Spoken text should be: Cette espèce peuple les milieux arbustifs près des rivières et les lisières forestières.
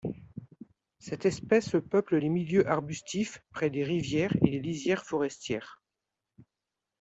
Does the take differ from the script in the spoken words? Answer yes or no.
no